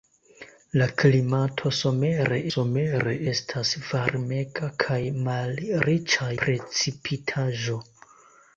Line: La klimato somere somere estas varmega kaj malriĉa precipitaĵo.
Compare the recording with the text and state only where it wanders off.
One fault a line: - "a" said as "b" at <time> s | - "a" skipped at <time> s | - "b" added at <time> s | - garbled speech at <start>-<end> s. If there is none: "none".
none